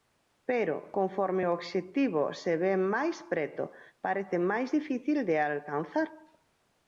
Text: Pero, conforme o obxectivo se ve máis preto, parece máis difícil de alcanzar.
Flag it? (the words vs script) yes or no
no